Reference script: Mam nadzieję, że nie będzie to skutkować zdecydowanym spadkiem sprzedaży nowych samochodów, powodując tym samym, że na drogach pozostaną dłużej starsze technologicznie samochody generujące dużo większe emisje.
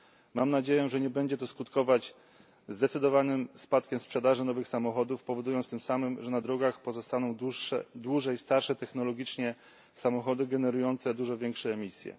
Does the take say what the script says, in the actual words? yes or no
yes